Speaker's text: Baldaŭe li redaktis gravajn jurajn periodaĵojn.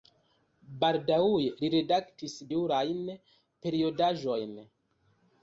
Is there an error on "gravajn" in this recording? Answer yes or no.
yes